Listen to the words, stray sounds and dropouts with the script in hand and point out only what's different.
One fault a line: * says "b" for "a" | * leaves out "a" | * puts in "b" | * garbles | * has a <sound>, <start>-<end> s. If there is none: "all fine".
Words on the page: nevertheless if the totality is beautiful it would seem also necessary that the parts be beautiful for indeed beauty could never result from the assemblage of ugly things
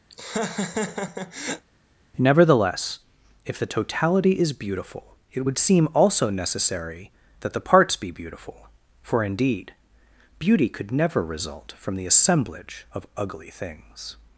* has a laugh, 0.1-1.7 s